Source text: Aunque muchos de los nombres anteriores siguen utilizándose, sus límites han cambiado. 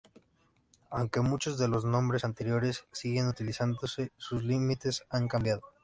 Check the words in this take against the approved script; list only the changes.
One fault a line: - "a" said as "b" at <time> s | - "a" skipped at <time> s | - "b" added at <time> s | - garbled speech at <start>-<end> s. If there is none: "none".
none